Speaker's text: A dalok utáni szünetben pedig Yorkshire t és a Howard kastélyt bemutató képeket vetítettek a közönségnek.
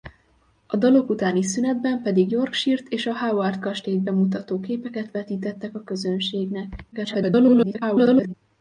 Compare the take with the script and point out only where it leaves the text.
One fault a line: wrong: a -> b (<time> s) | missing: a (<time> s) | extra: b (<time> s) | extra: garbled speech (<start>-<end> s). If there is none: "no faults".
extra: garbled speech (6.9-8.3 s)